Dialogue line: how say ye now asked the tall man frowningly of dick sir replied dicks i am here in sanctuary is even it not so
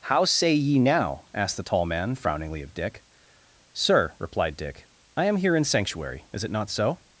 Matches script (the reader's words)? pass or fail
fail